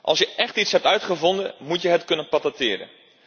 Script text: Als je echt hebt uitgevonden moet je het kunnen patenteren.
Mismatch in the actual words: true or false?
true